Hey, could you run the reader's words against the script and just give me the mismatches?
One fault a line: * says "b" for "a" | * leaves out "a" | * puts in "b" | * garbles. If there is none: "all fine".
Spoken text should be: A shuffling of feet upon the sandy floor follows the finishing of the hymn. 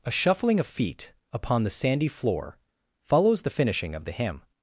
all fine